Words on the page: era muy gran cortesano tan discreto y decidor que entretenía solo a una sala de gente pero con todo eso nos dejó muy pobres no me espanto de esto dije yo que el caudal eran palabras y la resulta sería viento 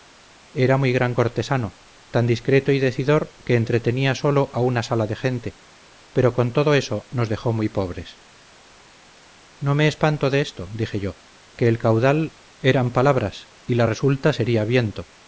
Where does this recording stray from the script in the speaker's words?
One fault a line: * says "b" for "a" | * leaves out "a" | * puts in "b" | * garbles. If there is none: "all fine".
all fine